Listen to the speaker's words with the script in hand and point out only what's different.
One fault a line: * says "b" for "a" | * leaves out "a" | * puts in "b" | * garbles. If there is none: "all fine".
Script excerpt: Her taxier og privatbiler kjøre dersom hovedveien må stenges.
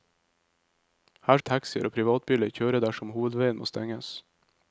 all fine